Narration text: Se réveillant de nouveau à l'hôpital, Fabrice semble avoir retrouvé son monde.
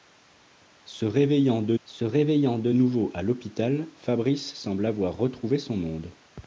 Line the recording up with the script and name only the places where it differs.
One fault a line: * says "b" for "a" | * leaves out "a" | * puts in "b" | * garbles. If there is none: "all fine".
* puts in "se réveillant de"